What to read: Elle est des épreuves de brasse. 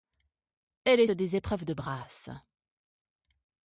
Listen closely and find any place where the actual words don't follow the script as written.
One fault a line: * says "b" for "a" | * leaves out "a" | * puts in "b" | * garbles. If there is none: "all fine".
all fine